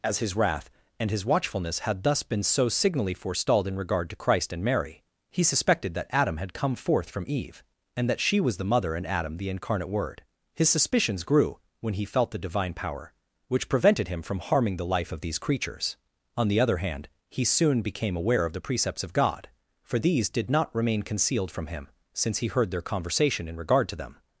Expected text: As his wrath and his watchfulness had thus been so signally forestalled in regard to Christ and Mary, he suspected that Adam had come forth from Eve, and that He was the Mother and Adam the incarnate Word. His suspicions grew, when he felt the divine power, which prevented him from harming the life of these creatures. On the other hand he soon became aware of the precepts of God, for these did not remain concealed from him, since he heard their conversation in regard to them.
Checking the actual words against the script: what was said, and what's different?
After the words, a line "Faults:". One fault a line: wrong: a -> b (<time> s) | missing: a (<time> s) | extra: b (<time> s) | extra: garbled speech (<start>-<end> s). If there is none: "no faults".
As his wrath and his watchfulness had thus been so signally forestalled in regard to Christ and Mary, he suspected that Adam had come forth from Eve, and that She was the Mother and Adam the incarnate Word. His suspicions grew, when he felt the divine power, which prevented him from harming the life of these creatures. On the other hand he soon became aware of the precepts of God, for these did not remain concealed from him, since he heard their conversation in regard to them.
Faults:
wrong: He -> She (8.2 s)